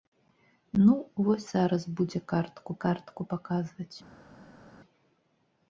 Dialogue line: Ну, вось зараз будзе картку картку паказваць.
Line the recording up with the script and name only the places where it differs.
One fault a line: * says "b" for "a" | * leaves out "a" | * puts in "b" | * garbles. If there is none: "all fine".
all fine